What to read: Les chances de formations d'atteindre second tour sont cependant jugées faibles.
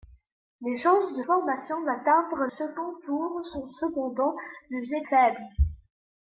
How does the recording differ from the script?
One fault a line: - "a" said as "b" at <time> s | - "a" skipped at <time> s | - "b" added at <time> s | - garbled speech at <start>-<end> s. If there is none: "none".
none